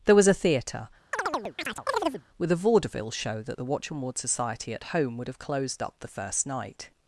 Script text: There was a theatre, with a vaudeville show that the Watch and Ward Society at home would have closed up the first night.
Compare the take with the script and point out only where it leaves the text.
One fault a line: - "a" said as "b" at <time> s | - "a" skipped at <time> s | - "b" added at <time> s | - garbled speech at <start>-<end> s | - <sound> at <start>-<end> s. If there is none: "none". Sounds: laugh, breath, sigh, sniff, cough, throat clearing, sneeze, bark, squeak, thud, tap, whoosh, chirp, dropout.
- chirp at 1.1-2.2 s